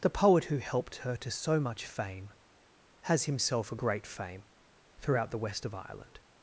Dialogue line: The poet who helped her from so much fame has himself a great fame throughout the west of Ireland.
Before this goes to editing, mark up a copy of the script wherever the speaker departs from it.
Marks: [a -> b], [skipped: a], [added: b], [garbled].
The poet who helped her [from -> to] so much fame has himself a great fame throughout the west of Ireland.